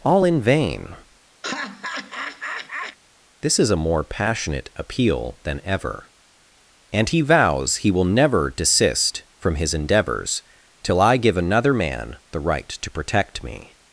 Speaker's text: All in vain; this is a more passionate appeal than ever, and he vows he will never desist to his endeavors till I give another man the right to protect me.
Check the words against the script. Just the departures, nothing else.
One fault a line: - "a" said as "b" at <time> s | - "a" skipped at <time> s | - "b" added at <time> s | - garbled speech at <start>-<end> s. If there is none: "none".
- "to" said as "from" at 9.4 s